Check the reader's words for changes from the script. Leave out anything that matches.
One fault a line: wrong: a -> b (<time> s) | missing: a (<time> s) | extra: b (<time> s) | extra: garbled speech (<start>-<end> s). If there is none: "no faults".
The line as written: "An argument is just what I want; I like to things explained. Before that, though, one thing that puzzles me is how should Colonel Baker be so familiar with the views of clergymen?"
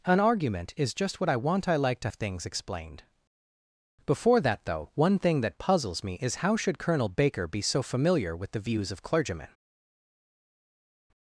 no faults